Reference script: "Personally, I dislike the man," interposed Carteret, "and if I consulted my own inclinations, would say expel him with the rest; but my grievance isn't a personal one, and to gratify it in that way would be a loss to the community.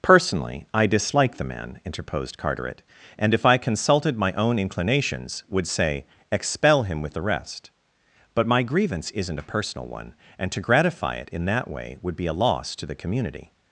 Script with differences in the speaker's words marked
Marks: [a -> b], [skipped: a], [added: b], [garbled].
"Personally, I dislike the man," interposed Carteret, "and if I consulted my own inclinations, would say expel him with the rest; but my grievance isn't a personal one, and to gratify it in that way would be a loss to the community.